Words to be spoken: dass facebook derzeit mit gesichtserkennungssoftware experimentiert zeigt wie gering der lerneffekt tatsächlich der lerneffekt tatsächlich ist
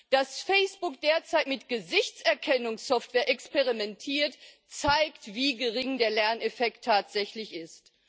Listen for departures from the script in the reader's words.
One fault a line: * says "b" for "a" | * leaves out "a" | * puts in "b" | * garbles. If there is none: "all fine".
* leaves out "der lerneffekt tatsächlich"